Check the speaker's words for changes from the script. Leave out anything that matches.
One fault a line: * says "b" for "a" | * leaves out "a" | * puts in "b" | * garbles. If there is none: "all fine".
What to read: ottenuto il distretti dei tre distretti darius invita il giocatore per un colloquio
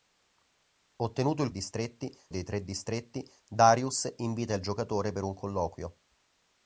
all fine